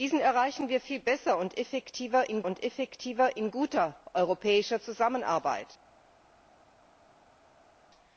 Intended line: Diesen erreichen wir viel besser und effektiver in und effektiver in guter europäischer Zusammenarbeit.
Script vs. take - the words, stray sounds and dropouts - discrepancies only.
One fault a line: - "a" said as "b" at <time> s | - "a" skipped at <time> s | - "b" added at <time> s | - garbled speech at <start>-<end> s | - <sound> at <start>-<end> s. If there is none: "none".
none